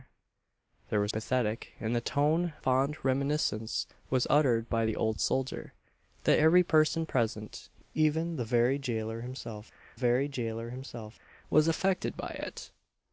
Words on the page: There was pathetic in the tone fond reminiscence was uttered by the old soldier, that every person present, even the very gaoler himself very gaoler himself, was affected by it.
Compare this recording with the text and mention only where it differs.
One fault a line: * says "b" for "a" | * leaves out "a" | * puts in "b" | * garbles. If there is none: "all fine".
all fine